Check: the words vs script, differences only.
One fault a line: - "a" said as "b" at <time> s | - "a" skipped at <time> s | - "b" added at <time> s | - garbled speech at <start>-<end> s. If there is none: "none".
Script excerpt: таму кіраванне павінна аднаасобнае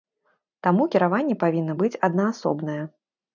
- "быць" added at 1.8 s